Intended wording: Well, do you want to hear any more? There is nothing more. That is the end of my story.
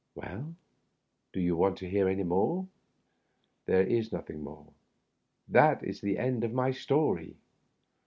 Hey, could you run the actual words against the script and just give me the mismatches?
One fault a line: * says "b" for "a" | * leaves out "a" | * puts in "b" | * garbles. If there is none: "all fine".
all fine